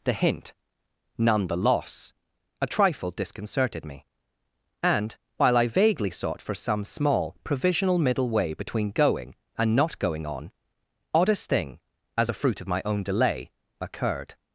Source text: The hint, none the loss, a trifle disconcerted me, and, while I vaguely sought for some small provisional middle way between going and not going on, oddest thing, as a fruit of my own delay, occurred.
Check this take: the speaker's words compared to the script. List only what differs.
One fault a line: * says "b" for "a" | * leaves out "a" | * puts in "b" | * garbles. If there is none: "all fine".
all fine